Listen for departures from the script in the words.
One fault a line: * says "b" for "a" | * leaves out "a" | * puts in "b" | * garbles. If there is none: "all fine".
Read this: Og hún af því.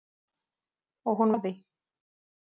all fine